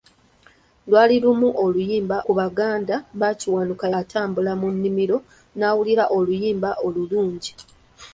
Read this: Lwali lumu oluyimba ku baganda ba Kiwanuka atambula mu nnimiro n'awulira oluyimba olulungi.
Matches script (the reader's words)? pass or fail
pass